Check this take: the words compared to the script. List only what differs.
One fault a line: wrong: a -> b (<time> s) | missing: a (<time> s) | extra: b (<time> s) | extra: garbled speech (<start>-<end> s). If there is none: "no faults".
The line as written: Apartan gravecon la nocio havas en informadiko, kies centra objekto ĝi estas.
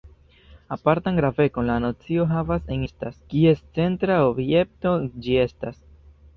wrong: informadiko -> estas (2.9 s)